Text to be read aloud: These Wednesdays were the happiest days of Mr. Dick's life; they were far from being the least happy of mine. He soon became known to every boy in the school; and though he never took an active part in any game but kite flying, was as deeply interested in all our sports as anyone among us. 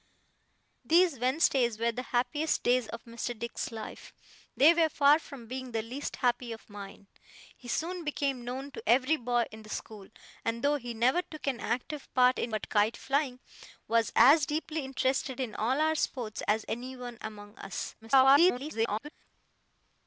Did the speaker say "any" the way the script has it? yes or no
no